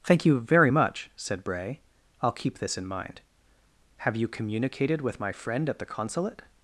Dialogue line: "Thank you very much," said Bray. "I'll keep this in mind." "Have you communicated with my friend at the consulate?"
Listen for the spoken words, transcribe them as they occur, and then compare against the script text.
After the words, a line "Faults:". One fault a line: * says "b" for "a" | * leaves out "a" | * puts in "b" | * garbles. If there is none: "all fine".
"Thank you very much," said Bray. "I'll keep this in mind." "Have you communicated with my friend at the consulate?"
Faults:
all fine